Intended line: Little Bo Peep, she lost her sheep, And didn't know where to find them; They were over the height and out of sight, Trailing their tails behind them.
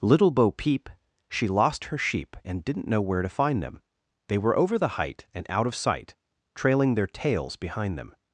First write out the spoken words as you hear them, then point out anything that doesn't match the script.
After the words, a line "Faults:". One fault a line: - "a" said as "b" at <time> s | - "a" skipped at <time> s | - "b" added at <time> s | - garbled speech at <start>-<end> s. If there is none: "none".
Little Bo Peep, she lost her sheep, And didn't know where to find them; They were over the height and out of sight, Trailing their tails behind them.
Faults:
none